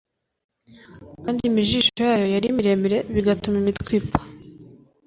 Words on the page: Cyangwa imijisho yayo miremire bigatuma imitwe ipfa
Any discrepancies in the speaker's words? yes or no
yes